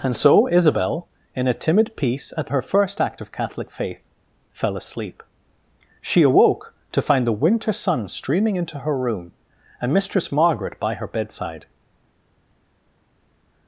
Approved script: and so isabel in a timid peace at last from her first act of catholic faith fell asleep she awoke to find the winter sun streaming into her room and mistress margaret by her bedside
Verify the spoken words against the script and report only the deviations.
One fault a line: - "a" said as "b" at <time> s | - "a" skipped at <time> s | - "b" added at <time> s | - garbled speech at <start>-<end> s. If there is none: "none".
- "last from" skipped at 2.5 s